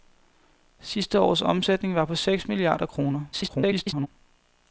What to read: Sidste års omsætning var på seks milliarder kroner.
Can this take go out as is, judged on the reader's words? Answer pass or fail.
fail